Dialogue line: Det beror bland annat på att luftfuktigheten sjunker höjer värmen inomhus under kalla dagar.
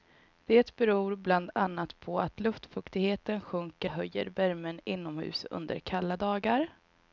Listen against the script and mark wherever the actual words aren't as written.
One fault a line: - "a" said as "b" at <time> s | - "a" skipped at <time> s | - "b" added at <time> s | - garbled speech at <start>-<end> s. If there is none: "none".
none